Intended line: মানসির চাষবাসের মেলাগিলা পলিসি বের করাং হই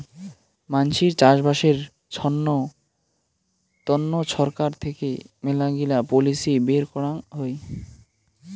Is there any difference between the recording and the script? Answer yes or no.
yes